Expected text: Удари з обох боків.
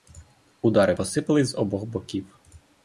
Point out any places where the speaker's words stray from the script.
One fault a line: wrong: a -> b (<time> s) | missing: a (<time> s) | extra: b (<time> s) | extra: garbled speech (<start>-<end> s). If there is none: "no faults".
extra: посипались (0.9 s)